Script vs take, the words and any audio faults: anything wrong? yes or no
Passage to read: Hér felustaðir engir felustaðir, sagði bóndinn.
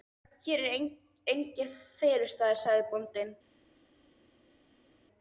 yes